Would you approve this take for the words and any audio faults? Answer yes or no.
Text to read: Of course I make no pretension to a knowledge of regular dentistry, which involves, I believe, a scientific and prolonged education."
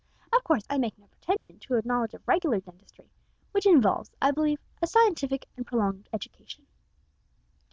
no